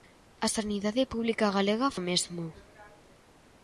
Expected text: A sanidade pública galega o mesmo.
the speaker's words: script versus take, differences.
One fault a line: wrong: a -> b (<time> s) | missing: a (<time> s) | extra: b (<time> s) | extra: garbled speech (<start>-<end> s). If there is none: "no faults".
no faults